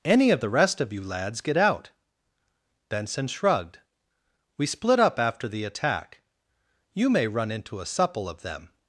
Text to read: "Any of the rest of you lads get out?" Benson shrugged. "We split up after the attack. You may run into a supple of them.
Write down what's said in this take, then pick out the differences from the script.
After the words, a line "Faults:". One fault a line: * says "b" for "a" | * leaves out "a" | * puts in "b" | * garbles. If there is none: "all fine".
"Any of the rest of you lads get out?" Benson shrugged. "We split up after the attack. You may run into a supple of them.
Faults:
all fine